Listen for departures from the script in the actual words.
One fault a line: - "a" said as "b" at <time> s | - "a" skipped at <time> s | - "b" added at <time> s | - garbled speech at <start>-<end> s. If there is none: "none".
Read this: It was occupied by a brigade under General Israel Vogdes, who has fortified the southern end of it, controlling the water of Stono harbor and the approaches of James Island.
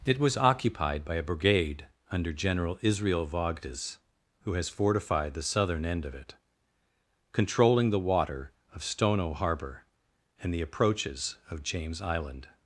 none